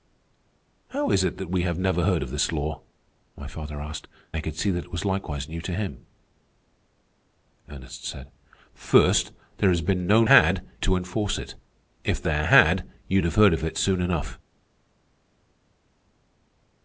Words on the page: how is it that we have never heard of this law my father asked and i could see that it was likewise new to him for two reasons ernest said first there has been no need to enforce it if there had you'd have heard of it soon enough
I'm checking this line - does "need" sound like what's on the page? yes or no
no